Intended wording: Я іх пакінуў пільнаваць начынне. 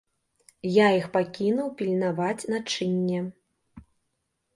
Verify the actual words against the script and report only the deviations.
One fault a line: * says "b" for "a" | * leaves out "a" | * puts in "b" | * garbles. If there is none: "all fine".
all fine